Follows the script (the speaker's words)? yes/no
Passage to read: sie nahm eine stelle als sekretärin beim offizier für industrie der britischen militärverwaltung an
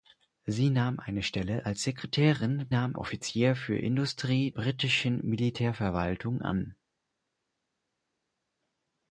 no